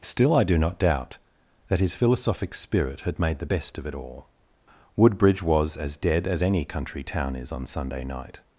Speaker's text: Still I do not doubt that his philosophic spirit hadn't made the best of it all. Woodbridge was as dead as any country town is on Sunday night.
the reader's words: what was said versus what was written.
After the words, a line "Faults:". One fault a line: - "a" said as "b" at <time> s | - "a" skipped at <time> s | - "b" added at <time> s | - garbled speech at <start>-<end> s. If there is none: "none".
Still I do not doubt that his philosophic spirit had made the best of it all. Woodbridge was as dead as any country town is on Sunday night.
Faults:
- "hadn't" said as "had" at 3.0 s